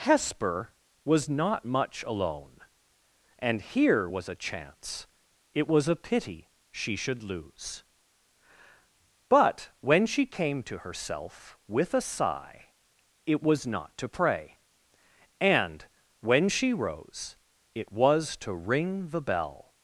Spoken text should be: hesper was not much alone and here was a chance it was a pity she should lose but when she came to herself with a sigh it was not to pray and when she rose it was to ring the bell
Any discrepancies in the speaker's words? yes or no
no